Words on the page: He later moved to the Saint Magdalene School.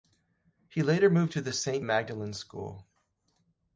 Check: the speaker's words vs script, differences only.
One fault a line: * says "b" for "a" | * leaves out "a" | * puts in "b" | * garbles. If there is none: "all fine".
all fine